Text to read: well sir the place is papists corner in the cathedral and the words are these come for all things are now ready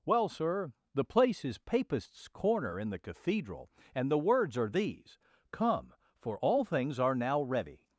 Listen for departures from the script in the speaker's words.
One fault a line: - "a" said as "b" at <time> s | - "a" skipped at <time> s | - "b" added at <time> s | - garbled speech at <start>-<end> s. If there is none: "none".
none